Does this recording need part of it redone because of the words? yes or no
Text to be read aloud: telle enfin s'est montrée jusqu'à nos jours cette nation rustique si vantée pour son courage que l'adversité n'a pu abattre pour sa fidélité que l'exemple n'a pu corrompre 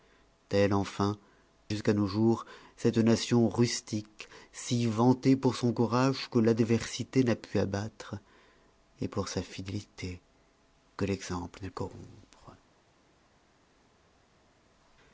yes